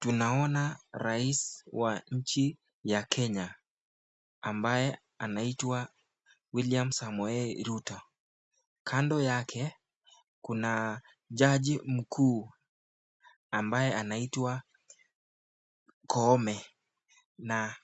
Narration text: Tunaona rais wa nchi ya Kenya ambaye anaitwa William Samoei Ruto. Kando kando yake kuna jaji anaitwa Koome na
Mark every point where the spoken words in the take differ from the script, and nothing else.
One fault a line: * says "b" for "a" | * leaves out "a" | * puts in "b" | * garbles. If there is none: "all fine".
* leaves out "kando"
* puts in "mkuu ambaye"